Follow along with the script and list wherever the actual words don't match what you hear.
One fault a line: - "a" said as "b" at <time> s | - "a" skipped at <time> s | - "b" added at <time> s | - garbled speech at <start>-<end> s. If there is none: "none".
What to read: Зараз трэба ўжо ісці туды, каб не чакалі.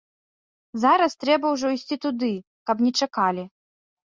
none